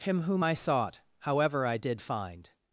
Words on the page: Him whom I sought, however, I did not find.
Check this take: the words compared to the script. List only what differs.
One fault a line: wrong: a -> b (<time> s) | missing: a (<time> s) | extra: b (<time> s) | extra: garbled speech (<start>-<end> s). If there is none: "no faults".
missing: not (2.0 s)